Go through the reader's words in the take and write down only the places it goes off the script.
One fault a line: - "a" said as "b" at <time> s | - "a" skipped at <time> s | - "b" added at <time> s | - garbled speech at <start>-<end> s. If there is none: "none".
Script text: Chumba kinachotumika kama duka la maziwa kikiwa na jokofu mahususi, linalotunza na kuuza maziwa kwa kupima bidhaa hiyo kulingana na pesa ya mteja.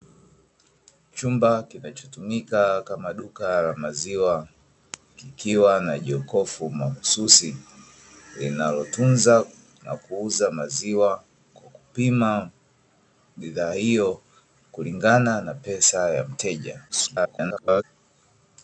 - garbled speech at 16.9-17.8 s